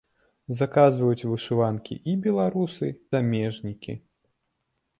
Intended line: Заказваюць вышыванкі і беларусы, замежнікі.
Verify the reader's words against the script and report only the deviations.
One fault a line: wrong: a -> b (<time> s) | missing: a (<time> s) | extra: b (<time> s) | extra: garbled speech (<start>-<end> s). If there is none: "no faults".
no faults